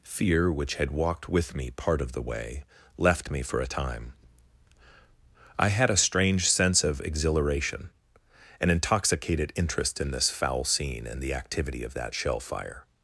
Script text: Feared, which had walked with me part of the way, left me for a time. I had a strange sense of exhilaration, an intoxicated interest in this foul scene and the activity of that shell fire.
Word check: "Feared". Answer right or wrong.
wrong